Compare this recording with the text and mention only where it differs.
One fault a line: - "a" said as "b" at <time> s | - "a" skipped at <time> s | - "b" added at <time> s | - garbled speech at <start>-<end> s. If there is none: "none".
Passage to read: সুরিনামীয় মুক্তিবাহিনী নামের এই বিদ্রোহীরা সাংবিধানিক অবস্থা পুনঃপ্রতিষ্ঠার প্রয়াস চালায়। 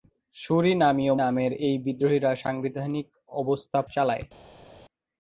- "মুক্তিবাহিনী" skipped at 1.1 s
- "পুনঃপ্রতিষ্ঠার প্রয়াস" skipped at 3.8 s